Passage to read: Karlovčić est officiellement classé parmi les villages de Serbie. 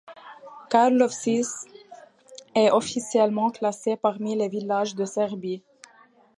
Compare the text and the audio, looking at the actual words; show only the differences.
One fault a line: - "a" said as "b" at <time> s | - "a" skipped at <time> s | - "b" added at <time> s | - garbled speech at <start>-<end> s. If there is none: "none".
none